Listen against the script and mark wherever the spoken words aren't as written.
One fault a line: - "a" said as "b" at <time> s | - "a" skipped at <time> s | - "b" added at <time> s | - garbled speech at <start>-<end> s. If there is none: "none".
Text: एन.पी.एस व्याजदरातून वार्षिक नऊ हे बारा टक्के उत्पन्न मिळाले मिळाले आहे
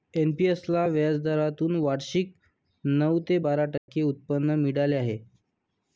- "ला" added at 0.7 s
- "हे" said as "ते" at 3.3 s
- "मिळाले" skipped at 5.0 s